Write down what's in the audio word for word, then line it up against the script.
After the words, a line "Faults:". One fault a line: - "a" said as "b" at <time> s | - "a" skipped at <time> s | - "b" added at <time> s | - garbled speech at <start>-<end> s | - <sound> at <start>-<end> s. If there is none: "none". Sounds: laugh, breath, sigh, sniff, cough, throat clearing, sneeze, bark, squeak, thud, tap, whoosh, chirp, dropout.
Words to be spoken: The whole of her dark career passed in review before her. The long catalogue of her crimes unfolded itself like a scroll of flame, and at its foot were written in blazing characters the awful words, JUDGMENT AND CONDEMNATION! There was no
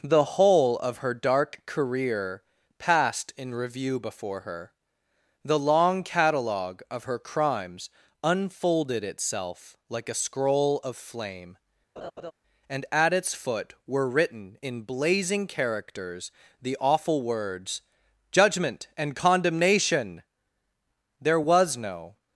The whole of her dark career passed in review before her. The long catalogue of her crimes unfolded itself like a scroll of flame, and at its foot were written in blazing characters the awful words, JUDGMENT AND CONDEMNATION! There was no
Faults:
- laugh at 12.0-12.3 s